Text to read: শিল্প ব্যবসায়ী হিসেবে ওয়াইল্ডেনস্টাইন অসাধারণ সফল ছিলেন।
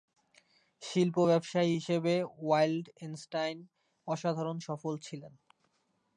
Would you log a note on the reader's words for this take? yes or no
no